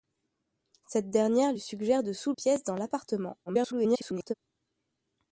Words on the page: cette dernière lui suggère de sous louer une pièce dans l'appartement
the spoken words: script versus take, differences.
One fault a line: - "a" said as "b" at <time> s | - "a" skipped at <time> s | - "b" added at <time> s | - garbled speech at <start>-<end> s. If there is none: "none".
- "louer une" skipped at 2.3 s
- garbled speech at 3.5-4.3 s